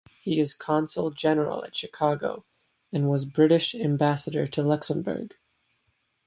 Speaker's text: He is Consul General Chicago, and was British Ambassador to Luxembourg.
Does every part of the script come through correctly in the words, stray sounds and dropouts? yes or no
no